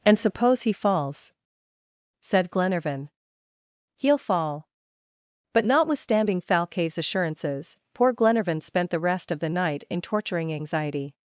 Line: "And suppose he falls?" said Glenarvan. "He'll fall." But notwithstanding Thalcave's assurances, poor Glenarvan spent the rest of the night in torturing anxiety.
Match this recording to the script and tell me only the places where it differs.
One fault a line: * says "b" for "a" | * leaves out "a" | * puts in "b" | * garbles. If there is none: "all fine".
all fine